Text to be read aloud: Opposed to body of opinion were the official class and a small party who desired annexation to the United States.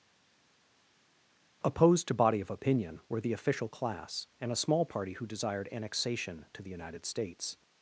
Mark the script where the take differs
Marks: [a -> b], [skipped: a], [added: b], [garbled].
Opposed to body of opinion were the official class and a small party who desired annexation to the United States.